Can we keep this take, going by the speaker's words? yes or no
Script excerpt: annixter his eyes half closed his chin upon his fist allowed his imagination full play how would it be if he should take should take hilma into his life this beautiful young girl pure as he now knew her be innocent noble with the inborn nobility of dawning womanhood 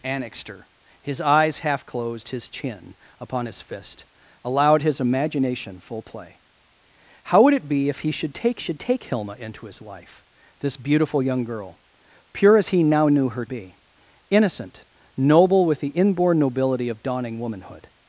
yes